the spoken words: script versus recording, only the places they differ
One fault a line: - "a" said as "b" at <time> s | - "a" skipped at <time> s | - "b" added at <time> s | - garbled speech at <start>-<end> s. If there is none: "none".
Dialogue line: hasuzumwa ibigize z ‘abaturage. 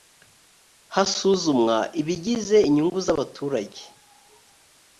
- "inyungu" added at 2.7 s